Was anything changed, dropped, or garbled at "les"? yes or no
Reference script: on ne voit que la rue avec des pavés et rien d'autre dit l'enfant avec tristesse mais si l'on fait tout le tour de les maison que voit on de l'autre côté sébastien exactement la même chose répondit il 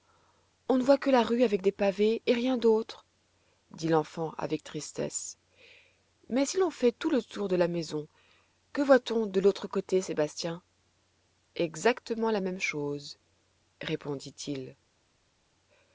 yes